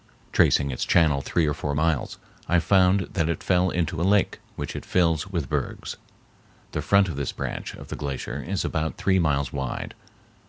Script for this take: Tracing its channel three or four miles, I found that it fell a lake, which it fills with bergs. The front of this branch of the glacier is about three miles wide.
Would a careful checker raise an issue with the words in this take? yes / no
yes